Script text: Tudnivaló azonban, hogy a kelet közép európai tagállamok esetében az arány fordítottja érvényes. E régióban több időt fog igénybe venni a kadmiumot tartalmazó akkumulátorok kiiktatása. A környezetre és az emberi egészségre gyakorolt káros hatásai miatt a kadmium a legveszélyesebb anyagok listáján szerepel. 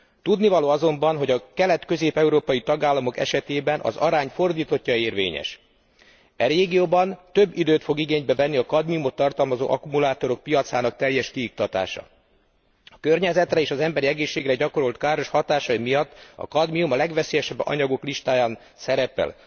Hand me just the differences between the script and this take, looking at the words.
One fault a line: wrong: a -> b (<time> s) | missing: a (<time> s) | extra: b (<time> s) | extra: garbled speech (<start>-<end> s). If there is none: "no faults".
extra: piacának teljes (10.4 s)